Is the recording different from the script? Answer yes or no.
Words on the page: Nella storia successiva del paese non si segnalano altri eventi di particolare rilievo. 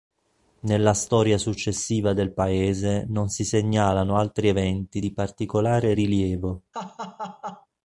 no